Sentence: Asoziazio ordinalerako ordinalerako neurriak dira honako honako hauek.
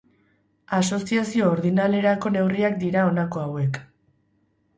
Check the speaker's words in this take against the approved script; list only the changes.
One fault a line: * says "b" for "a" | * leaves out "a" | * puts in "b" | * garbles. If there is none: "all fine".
* leaves out "ordinalerako"
* leaves out "honako"